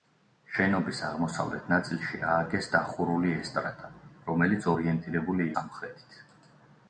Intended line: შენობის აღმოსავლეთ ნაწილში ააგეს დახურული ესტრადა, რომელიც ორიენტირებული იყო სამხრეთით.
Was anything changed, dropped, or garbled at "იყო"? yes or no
yes